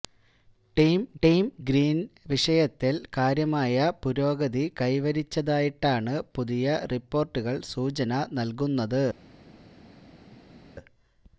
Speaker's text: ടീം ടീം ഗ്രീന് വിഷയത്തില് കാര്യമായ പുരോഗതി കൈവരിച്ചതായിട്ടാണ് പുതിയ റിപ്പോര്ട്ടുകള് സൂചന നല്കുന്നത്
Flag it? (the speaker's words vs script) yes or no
no